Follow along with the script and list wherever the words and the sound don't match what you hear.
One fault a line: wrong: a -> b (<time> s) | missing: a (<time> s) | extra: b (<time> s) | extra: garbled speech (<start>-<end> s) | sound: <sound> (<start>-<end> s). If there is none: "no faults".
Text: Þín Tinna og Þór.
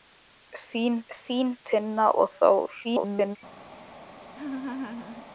extra: þín (1.2 s)
extra: garbled speech (2.8-3.4 s)
sound: laugh (4.3-5.3 s)